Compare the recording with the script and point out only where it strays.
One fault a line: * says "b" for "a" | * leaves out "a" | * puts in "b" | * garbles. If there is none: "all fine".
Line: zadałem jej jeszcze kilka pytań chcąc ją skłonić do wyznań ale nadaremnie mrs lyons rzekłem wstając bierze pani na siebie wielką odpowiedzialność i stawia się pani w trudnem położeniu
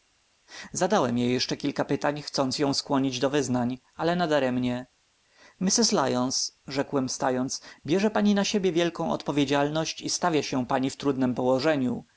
all fine